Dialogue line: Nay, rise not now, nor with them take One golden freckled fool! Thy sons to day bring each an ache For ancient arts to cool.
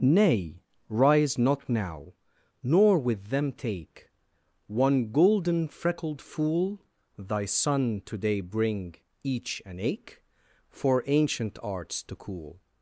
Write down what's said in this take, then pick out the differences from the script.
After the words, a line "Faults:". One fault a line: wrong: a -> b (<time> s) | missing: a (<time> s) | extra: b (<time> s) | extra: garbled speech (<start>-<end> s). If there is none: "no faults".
Nay, rise not now, nor with them take One golden freckled fool! Thy son to day bring each an ache For ancient arts to cool.
Faults:
wrong: sons -> son (7.5 s)